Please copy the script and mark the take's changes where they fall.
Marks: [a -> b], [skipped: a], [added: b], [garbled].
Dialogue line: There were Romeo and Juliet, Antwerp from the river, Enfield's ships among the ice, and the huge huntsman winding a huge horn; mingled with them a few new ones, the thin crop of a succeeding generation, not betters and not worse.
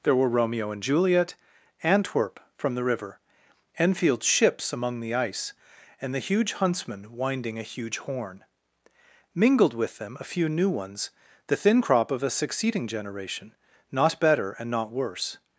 There were Romeo and Juliet, Antwerp from the river, Enfield's ships among the ice, and the huge huntsman winding a huge horn; mingled with them a few new ones, the thin crop of a succeeding generation, not [betters -> better] and not worse.